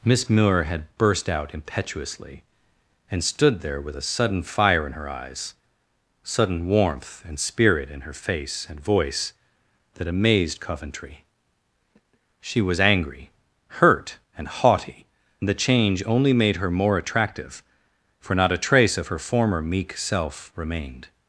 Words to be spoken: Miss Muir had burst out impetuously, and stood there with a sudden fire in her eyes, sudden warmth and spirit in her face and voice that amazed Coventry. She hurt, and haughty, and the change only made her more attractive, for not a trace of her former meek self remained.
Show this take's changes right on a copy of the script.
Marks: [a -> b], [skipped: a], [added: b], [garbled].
Miss Muir had burst out impetuously, and stood there with a sudden fire in her eyes, sudden warmth and spirit in her face and voice that amazed Coventry. She [added: was angry] hurt, and haughty, and the change only made her more attractive, for not a trace of her former meek self remained.